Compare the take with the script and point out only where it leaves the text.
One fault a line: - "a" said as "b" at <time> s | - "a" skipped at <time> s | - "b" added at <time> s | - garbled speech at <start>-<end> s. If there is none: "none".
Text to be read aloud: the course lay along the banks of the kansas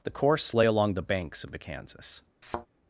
none